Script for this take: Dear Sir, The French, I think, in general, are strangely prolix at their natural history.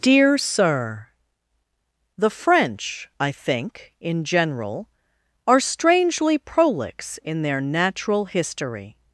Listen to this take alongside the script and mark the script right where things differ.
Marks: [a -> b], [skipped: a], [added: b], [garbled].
Dear Sir, The French, I think, in general, are strangely prolix [at -> in] their natural history.